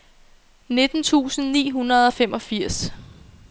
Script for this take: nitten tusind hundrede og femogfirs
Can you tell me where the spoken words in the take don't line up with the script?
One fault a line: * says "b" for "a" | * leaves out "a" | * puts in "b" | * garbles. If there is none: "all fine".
* puts in "ni"